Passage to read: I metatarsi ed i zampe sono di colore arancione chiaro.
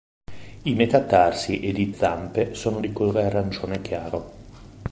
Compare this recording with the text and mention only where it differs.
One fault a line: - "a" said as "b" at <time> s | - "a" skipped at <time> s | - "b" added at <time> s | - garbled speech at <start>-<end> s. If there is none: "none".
none